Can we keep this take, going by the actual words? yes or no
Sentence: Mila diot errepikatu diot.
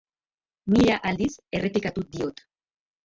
no